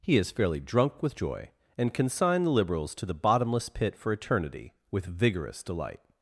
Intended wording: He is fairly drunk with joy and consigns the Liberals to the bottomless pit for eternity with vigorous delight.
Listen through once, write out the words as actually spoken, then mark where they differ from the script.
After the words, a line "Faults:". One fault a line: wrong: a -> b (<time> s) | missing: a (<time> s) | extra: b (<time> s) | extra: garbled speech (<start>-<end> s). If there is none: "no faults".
He is fairly drunk with joy and consign the Liberals to the bottomless pit for eternity with vigorous delight.
Faults:
wrong: consigns -> consign (1.9 s)